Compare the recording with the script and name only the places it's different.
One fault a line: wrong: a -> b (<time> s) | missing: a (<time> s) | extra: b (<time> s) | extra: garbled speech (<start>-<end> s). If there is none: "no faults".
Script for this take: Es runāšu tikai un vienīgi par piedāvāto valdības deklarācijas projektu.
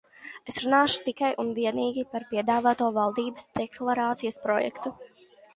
no faults